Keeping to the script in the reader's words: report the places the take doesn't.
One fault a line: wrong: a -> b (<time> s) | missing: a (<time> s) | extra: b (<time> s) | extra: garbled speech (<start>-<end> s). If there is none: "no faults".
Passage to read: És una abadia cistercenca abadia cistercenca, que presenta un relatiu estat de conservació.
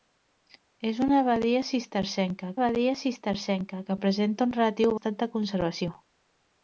no faults